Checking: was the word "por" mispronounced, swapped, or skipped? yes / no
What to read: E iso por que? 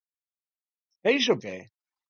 yes